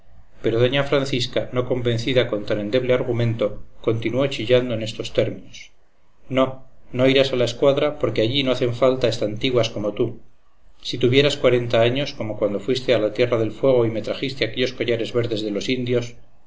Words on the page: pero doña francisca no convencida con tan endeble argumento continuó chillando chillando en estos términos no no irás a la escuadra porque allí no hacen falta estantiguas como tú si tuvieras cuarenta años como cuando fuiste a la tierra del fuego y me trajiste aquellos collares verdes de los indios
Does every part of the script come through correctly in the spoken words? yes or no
no